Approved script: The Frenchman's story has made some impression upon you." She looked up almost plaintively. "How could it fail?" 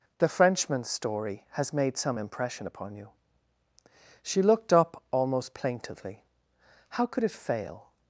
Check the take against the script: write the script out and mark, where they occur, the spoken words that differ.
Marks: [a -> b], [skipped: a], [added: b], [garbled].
The Frenchman's story has made some impression upon you." She looked up almost plaintively. "How could it fail?"